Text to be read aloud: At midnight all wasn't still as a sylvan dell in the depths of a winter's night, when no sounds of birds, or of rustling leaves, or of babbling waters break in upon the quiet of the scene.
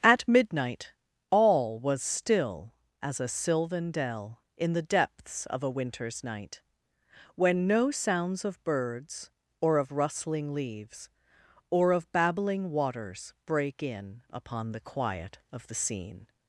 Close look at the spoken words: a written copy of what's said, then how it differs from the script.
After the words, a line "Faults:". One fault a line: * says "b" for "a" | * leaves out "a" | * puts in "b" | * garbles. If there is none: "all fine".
At midnight all was still as a sylvan dell in the depths of a winter's night, when no sounds of birds, or of rustling leaves, or of babbling waters break in upon the quiet of the scene.
Faults:
* says "was" for "wasn't"